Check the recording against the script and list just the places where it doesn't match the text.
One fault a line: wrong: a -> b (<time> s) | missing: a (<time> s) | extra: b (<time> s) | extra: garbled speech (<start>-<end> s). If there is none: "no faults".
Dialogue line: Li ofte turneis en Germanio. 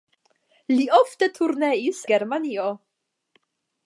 missing: en (2.0 s)